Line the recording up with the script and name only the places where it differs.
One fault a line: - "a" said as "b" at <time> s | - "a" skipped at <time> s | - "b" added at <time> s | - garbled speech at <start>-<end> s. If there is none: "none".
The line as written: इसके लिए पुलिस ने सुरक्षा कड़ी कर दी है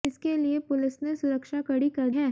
- "दी" skipped at 2.1 s